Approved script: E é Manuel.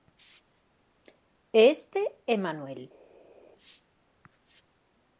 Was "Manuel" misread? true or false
false